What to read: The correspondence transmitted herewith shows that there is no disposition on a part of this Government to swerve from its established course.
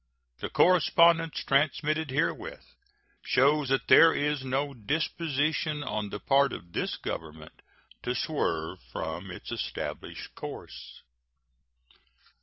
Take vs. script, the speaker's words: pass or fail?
fail